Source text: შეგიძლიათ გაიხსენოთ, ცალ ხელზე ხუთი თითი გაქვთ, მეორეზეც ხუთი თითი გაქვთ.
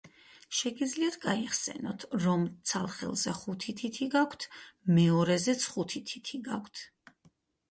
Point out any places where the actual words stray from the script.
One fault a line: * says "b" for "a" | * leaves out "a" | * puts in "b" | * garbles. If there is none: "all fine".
* puts in "რომ"